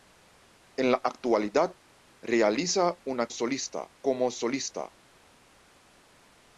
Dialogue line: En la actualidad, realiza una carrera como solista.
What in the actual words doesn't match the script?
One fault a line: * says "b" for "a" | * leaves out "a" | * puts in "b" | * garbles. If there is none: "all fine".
* says "solista" for "carrera"